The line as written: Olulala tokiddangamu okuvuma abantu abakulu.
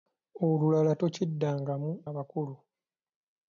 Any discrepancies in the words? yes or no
yes